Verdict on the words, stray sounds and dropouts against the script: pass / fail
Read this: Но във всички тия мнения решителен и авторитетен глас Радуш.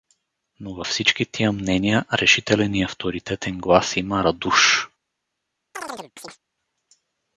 fail